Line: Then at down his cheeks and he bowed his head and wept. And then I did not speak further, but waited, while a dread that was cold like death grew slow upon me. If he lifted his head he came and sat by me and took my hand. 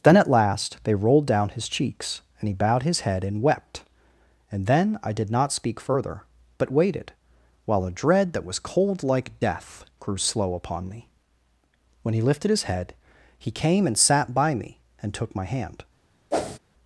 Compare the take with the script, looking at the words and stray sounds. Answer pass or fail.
fail